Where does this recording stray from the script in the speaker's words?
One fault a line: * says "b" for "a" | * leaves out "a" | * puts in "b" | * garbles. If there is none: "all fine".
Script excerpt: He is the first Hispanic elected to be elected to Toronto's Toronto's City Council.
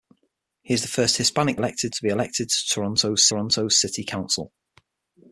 all fine